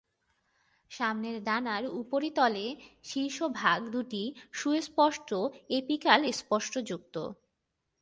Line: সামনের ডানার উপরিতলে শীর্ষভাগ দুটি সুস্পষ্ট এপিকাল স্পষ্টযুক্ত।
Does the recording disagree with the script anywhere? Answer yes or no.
no